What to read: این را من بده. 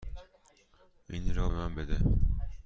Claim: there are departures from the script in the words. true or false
false